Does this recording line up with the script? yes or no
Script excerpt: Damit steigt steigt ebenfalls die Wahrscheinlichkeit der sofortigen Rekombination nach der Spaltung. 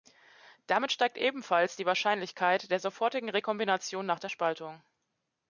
no